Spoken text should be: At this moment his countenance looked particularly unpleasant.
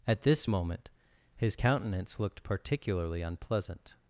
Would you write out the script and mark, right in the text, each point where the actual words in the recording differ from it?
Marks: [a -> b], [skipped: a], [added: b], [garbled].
At this moment his countenance looked particularly unpleasant.